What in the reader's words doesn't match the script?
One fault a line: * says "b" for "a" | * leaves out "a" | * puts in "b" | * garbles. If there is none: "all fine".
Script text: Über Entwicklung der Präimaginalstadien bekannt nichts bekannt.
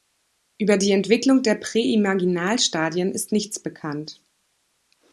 * puts in "die"
* says "ist" for "bekannt"